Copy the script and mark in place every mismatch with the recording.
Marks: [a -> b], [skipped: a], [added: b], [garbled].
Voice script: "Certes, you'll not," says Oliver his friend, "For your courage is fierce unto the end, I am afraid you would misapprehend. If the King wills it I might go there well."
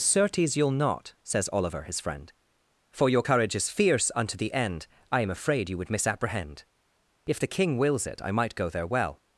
"Certes, you'll not," says Oliver his friend, "For your courage is fierce unto the end, I am afraid you would misapprehend. If the King wills it I might go there well."